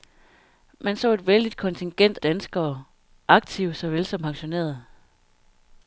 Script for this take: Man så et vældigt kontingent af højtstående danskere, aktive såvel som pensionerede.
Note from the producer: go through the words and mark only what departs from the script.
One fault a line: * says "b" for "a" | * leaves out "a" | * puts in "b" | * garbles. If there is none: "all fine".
* leaves out "af højtstående"